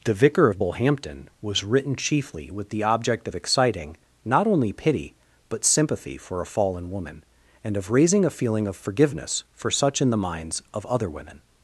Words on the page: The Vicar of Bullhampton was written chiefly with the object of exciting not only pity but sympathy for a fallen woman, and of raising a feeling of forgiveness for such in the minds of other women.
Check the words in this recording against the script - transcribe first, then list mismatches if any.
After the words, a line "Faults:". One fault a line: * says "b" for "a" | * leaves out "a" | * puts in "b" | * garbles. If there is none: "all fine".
The Vicar of Bullhampton was written chiefly with the object of exciting not only pity but sympathy for a fallen woman, and of raising a feeling of forgiveness for such in the minds of other women.
Faults:
all fine